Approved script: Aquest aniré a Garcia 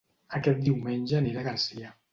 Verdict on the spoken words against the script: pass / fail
fail